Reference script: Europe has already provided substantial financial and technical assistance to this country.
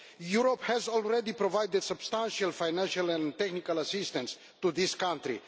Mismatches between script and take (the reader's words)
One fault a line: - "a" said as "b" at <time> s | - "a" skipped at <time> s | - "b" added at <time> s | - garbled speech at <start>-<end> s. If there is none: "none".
none